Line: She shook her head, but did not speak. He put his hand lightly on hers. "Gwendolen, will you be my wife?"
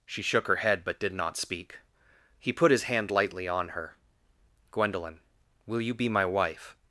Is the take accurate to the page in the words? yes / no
no